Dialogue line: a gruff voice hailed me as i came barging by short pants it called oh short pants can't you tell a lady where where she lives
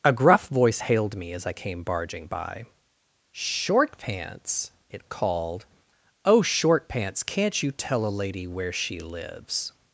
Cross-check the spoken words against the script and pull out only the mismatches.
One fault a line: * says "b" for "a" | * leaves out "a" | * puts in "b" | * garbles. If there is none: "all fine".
* leaves out "where"